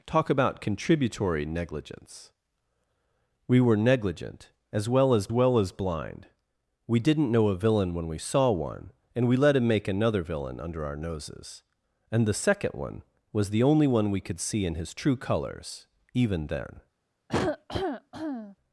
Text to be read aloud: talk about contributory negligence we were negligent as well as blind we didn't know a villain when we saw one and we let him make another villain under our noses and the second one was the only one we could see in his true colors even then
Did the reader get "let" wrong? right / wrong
right